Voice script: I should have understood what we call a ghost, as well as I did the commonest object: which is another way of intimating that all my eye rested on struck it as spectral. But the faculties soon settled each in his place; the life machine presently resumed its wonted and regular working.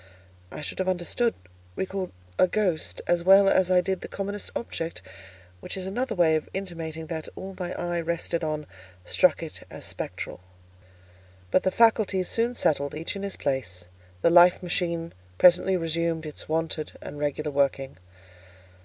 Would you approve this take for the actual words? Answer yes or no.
no